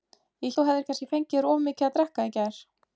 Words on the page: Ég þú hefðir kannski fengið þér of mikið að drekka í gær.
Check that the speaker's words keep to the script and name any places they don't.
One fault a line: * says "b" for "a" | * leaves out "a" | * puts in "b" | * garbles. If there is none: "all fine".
all fine